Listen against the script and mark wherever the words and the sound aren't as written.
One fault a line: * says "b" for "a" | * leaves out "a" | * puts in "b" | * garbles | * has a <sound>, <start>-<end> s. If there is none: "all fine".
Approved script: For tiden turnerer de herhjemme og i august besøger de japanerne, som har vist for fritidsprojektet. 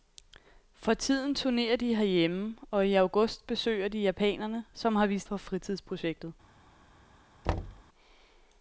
* has a thud, 7.4-7.8 s